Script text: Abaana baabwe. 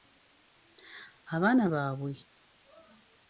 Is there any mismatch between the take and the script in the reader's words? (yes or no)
no